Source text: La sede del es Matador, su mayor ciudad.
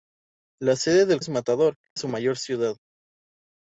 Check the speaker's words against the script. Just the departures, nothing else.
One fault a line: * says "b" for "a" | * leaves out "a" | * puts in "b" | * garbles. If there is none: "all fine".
all fine